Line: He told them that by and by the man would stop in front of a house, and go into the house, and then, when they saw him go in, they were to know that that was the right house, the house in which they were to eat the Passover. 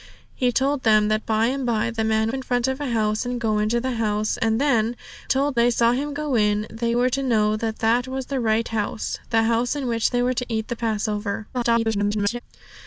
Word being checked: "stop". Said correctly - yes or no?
no